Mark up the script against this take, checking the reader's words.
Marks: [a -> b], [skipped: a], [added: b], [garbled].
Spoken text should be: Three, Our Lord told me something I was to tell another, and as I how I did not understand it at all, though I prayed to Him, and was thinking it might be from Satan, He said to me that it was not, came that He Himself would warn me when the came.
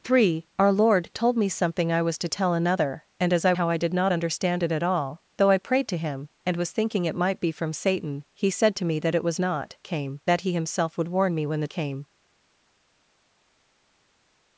Three, Our Lord told me something I was to tell another, and as I how I did not understand it at all, though I prayed to Him, and was thinking it might be from Satan, He said to me that it was not, came that He Himself would warn me when the came.